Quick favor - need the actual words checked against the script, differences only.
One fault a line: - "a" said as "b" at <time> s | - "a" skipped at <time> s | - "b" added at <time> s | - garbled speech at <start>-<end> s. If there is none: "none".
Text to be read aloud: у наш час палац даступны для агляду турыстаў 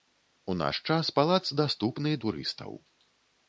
- "для агляду" skipped at 2.1 s